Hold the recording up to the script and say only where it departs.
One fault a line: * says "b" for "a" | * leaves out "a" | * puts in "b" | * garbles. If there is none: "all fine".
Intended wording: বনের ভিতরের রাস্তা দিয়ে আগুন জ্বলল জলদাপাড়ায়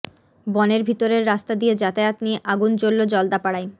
* puts in "যাতায়াত নিয়ে"